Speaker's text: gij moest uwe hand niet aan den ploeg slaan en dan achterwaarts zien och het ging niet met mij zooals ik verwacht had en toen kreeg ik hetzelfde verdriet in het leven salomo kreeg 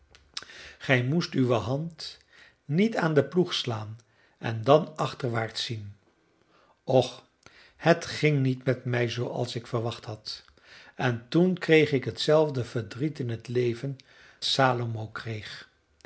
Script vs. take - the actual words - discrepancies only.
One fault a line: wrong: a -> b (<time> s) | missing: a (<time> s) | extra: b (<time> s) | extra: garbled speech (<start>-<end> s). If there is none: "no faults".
no faults